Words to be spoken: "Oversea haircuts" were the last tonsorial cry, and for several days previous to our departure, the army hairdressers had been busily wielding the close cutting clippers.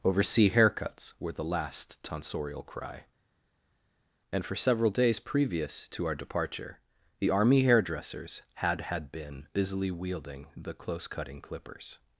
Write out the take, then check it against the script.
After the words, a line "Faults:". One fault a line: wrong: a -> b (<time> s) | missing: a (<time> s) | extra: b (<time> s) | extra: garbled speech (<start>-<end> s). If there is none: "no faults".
"Oversea haircuts" were the last tonsorial cry, and for several days previous to our departure, the army hairdressers had had been busily wielding the close cutting clippers.
Faults:
extra: had (8.8 s)